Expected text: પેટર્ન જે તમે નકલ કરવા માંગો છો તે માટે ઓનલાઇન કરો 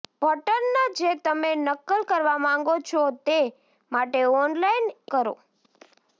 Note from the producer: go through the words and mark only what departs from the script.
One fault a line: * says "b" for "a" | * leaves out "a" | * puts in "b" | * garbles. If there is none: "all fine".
all fine